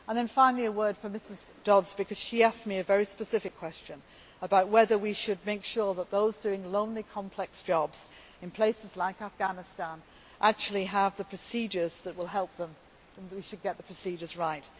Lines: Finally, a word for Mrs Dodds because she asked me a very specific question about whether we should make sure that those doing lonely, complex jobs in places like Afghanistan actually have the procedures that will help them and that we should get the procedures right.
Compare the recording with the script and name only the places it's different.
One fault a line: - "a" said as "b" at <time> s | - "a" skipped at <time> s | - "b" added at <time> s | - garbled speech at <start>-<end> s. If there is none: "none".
none